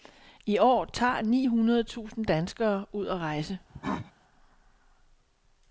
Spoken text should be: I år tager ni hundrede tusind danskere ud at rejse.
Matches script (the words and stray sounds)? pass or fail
fail